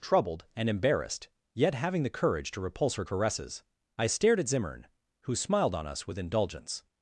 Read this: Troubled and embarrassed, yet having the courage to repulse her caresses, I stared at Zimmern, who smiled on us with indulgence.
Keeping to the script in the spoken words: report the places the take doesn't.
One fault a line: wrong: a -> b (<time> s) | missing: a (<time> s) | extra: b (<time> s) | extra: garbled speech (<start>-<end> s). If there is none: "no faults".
no faults